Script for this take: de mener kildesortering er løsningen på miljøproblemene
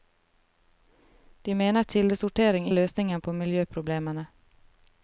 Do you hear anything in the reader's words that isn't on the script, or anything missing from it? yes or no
no